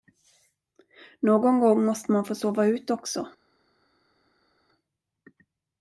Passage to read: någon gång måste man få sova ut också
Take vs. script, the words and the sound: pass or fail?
pass